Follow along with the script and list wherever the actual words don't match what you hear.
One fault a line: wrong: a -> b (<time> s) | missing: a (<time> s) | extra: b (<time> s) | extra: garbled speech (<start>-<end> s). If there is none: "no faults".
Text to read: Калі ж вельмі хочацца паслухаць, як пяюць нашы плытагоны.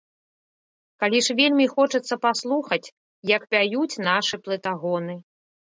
no faults